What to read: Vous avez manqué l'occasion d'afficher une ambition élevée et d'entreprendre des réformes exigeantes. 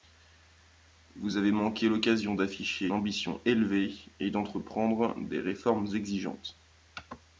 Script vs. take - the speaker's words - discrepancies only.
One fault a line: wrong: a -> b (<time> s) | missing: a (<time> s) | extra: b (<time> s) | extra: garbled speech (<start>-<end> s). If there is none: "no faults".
missing: une (2.9 s)